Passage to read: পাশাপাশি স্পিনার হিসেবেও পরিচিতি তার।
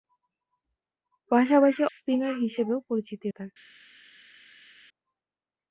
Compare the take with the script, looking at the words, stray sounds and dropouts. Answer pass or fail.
pass